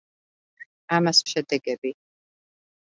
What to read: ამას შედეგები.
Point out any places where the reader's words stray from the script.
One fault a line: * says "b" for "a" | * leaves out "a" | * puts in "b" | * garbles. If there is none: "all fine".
all fine